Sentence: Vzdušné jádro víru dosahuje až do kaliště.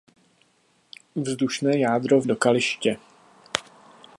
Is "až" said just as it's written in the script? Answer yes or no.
no